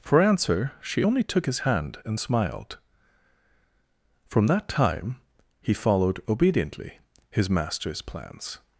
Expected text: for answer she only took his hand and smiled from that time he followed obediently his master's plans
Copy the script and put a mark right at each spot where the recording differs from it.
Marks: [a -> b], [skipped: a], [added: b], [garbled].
for answer she only took his hand and smiled from that time he followed obediently his master's plans